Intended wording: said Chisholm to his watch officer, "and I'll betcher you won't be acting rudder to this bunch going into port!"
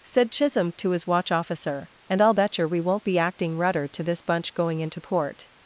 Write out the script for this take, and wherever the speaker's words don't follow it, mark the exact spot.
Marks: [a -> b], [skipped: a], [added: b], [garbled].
said Chisholm to his watch officer, "and I'll betcher [you -> we] won't be acting rudder to this bunch going into port!"